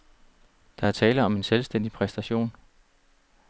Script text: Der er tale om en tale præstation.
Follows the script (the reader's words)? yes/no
no